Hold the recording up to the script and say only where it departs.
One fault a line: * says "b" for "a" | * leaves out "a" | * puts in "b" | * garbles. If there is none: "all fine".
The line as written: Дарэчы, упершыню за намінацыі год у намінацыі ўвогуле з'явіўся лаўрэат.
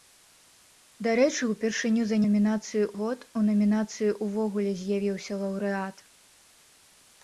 all fine